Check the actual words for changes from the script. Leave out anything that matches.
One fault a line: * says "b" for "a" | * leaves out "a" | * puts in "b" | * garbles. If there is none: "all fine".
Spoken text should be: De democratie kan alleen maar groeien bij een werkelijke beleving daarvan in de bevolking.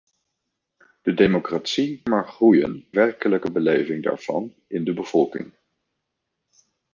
* leaves out "kan alleen"
* leaves out "bij een"